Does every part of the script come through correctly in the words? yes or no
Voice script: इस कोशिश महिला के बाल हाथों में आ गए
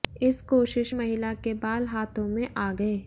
yes